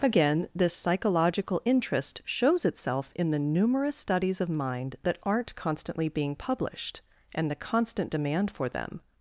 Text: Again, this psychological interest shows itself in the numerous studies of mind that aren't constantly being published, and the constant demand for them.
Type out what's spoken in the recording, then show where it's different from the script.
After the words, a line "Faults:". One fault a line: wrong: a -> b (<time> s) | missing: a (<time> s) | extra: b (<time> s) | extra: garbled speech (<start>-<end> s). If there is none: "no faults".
Again, this psychological interest shows itself in the numerous studies of mind that aren't constantly being published, and the constant demand for them.
Faults:
no faults